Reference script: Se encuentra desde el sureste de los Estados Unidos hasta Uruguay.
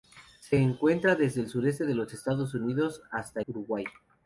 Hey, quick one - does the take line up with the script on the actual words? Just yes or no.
yes